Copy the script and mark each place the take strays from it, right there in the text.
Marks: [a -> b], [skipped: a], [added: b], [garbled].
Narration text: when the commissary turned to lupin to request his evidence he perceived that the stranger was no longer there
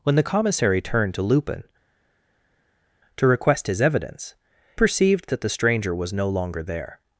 when the commissary turned to lupin to request his evidence [skipped: he] perceived that the stranger was no longer there